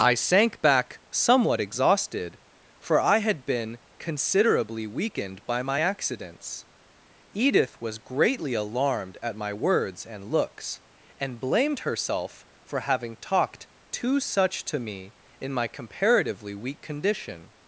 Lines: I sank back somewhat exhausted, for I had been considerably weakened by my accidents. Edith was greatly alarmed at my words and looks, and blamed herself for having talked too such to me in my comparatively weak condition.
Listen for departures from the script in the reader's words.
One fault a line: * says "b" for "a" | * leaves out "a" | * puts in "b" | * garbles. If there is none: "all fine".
all fine